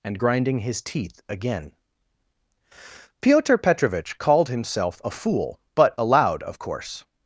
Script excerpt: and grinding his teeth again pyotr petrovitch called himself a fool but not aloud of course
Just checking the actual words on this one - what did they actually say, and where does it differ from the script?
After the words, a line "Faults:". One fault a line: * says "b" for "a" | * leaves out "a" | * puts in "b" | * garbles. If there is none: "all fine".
and grinding his teeth again pyotr petrovitch called himself a fool but aloud of course
Faults:
* leaves out "not"